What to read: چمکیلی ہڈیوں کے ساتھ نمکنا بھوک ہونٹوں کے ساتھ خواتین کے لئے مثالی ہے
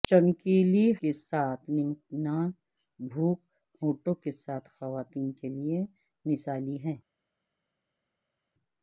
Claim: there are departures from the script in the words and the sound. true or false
true